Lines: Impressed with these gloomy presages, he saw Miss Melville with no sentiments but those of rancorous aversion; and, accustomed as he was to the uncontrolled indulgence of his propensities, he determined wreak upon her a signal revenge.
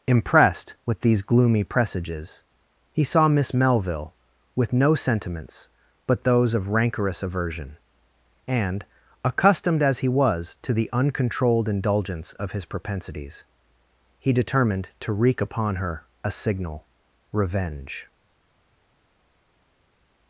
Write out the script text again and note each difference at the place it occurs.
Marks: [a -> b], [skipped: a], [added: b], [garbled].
Impressed with these gloomy presages, he saw Miss Melville with no sentiments but those of rancorous aversion; and, accustomed as he was to the uncontrolled indulgence of his propensities, he determined [added: to] wreak upon her a signal revenge.